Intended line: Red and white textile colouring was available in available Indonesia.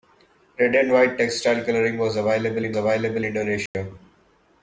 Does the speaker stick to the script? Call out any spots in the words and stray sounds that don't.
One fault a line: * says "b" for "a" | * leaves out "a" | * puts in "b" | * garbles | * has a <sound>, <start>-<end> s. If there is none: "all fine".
* has a dropout, 3.7-3.7 s